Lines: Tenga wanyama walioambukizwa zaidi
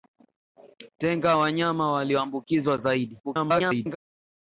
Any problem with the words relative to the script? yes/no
yes